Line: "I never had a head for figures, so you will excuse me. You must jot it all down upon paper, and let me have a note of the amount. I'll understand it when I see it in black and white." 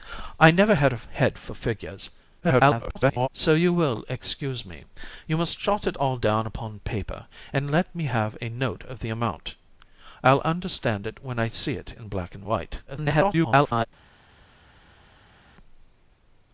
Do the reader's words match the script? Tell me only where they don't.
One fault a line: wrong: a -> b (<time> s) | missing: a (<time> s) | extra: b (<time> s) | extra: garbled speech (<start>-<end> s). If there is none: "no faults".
extra: garbled speech (2.4-3.3 s)
extra: garbled speech (12.9-13.9 s)